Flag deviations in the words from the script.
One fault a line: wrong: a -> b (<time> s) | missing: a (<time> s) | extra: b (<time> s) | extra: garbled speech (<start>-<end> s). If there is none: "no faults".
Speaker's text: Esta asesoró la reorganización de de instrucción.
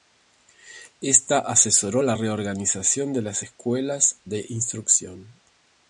extra: las Escuelas (3.2 s)